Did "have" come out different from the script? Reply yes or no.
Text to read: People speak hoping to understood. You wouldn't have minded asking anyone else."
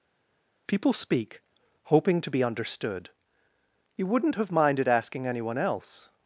no